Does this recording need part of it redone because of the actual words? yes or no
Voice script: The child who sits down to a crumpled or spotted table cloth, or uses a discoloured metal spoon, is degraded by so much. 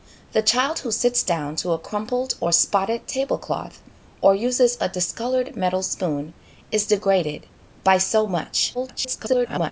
yes